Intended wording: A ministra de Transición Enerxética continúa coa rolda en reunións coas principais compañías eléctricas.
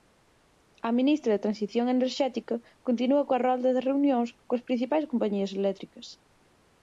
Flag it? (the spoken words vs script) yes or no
yes